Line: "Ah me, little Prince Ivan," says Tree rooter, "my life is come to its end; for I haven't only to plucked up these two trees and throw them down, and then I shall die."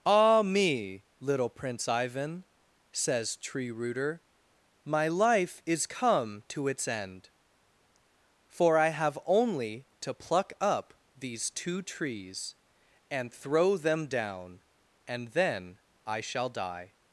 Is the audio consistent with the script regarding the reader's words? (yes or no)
no